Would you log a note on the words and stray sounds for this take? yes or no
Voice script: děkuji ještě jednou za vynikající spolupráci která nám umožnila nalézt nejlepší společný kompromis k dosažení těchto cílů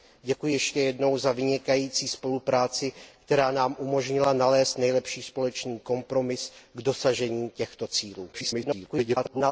yes